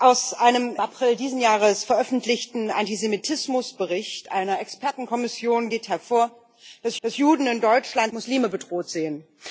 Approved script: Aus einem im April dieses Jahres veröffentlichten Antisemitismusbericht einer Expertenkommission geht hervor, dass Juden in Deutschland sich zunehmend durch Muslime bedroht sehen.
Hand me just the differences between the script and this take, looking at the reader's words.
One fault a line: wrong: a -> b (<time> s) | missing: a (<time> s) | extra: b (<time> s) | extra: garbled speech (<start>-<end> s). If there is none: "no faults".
missing: im (0.8 s)
extra: dass (7.0 s)
missing: sich zunehmend durch (8.1 s)